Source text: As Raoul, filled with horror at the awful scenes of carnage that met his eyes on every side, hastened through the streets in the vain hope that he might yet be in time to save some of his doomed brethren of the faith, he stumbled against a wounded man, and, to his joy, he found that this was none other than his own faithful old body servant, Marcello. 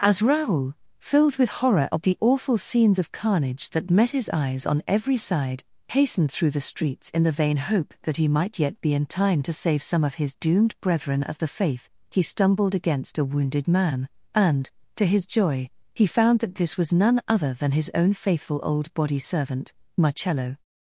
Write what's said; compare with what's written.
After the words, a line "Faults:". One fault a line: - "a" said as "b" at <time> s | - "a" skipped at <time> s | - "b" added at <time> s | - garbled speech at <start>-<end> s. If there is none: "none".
As Raoul, filled with horror at the awful scenes of carnage that met his eyes on every side, hastened through the streets in the vain hope that he might yet be in time to save some of his doomed brethren of the faith, he stumbled against a wounded man, and, to his joy, he found that this was none other than his own faithful old body servant, Marcello.
Faults:
none